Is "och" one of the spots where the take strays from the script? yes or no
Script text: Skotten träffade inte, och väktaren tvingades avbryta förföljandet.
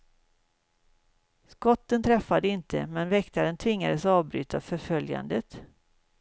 yes